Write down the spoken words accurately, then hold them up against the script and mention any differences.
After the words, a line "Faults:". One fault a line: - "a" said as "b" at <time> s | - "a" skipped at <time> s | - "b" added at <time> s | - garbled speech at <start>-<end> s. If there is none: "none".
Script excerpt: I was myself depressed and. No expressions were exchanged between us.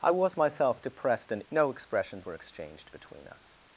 I was myself depressed and. No expressions were exchanged between us.
Faults:
none